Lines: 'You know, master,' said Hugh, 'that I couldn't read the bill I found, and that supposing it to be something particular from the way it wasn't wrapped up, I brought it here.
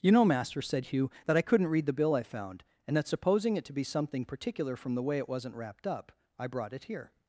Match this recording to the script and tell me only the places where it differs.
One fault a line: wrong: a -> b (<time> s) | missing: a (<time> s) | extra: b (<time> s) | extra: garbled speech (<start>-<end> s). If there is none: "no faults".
no faults